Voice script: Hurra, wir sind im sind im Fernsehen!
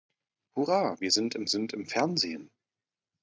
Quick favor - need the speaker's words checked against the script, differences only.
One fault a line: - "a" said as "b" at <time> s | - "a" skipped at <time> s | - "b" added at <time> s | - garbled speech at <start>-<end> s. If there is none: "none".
none